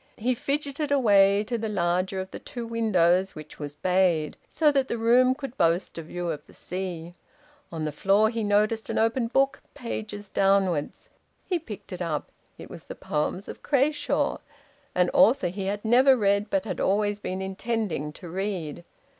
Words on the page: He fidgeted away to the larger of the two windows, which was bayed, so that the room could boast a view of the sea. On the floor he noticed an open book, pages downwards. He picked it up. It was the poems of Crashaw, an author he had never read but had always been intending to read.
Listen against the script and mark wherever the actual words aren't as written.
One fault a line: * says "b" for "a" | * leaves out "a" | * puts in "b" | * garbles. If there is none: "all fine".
all fine